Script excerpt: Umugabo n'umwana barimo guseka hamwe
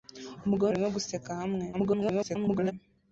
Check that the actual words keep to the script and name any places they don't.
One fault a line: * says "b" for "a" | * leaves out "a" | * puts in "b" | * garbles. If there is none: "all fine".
* leaves out "n'umwana"
* garbles